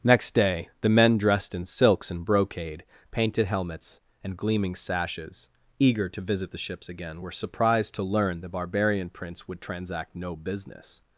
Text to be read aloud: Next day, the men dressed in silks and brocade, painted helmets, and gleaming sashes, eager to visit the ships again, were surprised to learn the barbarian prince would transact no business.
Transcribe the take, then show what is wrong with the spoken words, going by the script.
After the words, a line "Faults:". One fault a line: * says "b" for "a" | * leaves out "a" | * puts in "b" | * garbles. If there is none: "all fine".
Next day, the men dressed in silks and brocade, painted helmets, and gleaming sashes, eager to visit the ships again, were surprised to learn the barbarian prince would transact no business.
Faults:
all fine